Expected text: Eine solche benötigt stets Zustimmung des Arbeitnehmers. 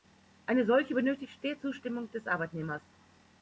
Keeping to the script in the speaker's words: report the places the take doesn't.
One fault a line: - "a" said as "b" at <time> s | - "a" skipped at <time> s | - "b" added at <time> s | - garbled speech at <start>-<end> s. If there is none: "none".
none